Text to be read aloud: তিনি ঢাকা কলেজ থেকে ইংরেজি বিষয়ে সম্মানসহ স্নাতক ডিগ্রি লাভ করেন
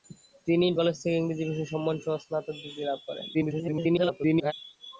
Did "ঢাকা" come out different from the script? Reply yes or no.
yes